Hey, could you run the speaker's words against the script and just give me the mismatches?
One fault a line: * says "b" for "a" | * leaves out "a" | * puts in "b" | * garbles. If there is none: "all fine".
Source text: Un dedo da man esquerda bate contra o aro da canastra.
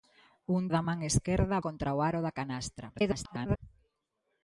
* leaves out "dedo"
* leaves out "bate"
* garbles